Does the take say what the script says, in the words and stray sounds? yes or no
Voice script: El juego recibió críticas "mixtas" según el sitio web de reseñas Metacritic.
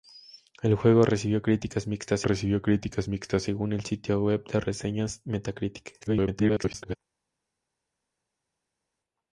no